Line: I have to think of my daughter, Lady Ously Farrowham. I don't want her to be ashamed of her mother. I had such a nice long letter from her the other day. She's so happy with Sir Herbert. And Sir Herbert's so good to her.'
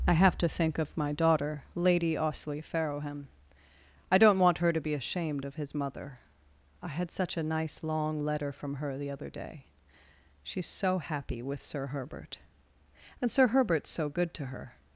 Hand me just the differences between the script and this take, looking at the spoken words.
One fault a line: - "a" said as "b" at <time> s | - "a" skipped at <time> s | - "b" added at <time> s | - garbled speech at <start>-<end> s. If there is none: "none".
- "her" said as "his" at 5.5 s